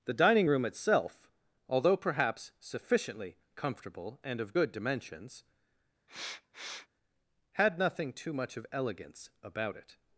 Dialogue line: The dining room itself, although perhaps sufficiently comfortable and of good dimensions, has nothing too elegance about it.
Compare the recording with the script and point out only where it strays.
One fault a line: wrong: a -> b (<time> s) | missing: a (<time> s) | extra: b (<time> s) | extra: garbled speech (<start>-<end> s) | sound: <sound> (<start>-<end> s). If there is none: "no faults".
sound: sniff (6.1-6.9 s)
wrong: has -> had (7.5 s)
extra: much of (8.3 s)